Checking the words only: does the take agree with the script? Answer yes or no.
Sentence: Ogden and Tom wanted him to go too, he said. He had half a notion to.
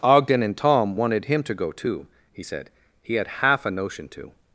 yes